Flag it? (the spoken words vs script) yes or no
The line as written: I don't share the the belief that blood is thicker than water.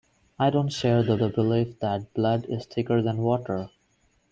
no